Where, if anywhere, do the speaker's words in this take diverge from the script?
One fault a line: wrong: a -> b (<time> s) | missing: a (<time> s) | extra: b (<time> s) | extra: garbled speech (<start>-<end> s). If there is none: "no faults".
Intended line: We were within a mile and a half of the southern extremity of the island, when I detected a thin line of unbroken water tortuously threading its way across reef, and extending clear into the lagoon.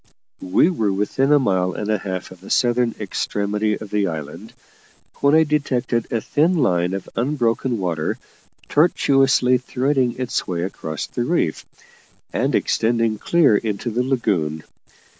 extra: the (11.1 s)